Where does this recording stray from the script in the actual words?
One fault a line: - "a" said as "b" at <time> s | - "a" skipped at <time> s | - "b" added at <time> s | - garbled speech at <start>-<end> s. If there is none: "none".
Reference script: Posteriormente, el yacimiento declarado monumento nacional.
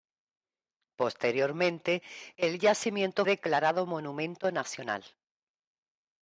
none